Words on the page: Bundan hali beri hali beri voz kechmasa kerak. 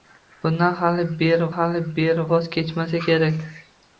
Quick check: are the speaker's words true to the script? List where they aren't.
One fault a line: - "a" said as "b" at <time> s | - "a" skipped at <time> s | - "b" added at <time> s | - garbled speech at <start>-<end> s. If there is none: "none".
none